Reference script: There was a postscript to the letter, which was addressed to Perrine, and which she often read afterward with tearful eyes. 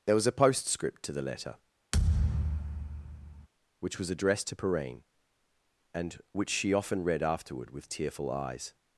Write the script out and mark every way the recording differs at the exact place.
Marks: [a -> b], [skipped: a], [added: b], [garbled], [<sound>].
There was a postscript to the letter, [thud] which was addressed to Perrine, and which she often read afterward with tearful eyes.